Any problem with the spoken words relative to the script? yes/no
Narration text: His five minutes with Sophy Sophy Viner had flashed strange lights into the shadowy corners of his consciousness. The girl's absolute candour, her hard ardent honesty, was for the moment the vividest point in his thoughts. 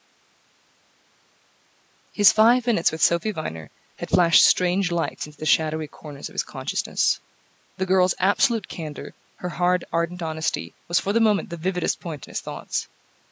yes